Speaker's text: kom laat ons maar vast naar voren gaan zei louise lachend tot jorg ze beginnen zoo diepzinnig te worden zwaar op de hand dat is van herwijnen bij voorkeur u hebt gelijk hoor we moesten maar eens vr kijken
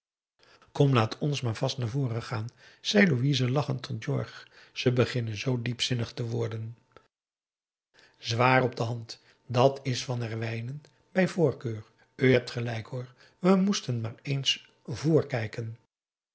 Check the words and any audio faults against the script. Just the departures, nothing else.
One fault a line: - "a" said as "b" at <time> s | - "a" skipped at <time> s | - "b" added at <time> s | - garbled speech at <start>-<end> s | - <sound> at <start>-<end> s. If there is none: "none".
none